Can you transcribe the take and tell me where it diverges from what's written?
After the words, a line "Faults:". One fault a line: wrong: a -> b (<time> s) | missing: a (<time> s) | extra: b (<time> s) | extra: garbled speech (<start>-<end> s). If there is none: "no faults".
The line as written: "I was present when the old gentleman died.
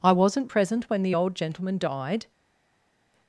"I wasn't present when the old gentleman died.
Faults:
wrong: was -> wasn't (0.1 s)